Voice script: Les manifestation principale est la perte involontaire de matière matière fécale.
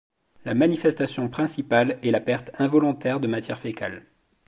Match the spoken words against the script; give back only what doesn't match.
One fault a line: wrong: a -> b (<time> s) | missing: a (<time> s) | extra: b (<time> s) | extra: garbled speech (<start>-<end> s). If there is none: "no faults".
wrong: Les -> La (0.5 s)
missing: matière (3.6 s)